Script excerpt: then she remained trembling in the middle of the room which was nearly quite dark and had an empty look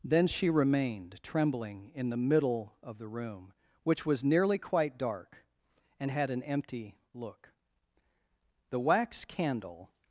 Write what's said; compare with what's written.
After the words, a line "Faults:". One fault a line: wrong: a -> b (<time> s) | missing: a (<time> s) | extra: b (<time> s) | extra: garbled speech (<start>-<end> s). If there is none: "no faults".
then she remained trembling in the middle of the room which was nearly quite dark and had an empty look the wax candle
Faults:
extra: the wax candle (8.7 s)